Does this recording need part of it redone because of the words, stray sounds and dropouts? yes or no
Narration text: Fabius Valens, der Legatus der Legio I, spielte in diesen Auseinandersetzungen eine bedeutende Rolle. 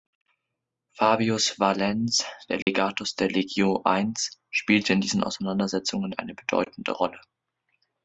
yes